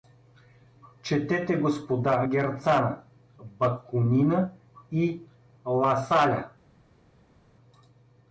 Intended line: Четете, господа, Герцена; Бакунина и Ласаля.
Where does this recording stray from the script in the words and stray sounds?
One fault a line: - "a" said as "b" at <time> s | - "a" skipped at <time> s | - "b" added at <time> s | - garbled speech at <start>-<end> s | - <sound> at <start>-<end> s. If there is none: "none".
none